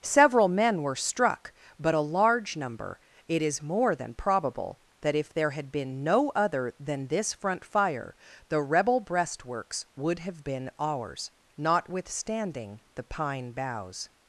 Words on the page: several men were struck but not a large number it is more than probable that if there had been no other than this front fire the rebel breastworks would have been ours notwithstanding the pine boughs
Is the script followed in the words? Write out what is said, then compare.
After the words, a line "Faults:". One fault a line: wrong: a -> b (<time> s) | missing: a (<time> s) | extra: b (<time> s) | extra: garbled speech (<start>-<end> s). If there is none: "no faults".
several men were struck but a large number it is more than probable that if there had been no other than this front fire the rebel breastworks would have been ours notwithstanding the pine boughs
Faults:
missing: not (1.9 s)